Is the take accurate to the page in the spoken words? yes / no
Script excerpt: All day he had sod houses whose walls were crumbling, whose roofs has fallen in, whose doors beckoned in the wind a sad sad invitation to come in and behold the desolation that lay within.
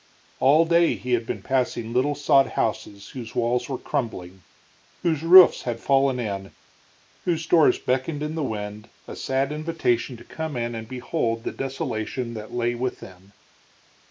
no